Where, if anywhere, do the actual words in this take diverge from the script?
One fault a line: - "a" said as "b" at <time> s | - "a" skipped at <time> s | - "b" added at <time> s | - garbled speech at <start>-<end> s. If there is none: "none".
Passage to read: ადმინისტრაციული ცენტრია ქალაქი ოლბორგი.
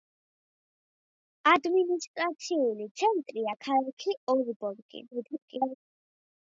- garbled speech at 5.1-5.7 s